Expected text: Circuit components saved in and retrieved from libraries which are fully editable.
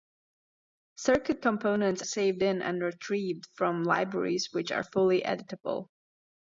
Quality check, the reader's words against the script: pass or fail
pass